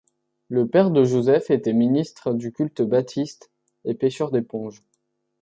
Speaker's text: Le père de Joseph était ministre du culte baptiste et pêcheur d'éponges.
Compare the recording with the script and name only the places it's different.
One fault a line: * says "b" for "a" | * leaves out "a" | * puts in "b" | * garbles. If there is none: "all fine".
all fine